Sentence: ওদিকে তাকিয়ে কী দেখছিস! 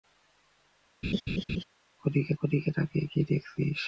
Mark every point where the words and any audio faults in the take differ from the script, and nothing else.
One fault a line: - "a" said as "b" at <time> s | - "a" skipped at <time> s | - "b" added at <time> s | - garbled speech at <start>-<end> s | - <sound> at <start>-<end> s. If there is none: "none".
- laugh at 1.0-1.6 s
- "ওদিকে" added at 2.4 s